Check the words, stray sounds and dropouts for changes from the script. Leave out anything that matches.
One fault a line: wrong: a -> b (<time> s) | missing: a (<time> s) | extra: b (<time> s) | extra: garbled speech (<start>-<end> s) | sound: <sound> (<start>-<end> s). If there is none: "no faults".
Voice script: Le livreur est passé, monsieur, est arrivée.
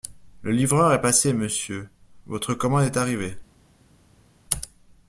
extra: votre commande (2.3 s)